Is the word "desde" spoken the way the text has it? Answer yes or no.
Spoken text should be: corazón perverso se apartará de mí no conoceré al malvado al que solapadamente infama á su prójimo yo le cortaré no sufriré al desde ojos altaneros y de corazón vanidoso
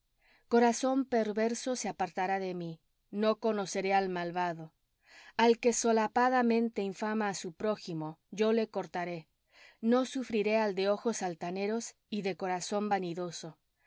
no